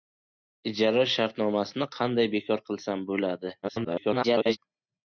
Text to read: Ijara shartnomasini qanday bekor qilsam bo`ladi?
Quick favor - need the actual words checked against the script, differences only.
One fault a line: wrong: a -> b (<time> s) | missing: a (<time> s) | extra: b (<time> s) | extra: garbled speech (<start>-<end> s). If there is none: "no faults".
extra: garbled speech (3.6-4.6 s)